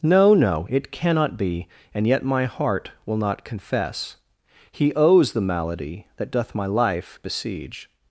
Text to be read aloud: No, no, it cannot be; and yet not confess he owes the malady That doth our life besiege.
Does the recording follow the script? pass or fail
fail